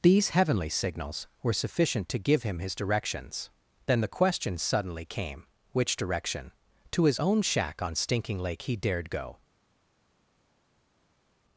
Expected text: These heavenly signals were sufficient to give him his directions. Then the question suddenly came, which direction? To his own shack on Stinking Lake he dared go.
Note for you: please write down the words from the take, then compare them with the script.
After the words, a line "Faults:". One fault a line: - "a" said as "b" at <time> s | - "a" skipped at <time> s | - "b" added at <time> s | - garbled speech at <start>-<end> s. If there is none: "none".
These heavenly signals were sufficient to give him his directions. Then the question suddenly came, which direction? To his own shack on Stinking Lake he dared go.
Faults:
none